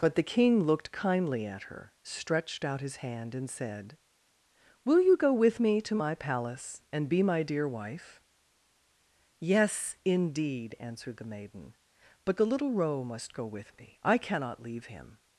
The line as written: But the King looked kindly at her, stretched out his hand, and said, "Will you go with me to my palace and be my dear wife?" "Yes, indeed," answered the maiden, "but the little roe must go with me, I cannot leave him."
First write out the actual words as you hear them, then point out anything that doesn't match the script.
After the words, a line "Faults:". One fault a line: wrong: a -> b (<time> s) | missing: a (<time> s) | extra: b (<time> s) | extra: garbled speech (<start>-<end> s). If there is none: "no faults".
But the King looked kindly at her, stretched out his hand, and said, "Will you go with me to my palace and be my dear wife?" "Yes, indeed," answered the maiden, "but the little roe must go with me, I cannot leave him."
Faults:
no faults